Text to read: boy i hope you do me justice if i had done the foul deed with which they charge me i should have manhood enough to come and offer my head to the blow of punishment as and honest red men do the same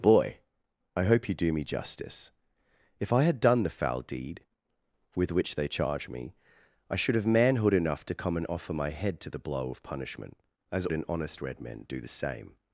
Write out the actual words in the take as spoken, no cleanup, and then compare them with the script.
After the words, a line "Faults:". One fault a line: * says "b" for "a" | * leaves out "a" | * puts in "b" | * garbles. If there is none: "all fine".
boy i hope you do me justice if i had done the foul deed with which they charge me i should have manhood enough to come and offer my head to the blow of punishment as and honest red men do the same
Faults:
all fine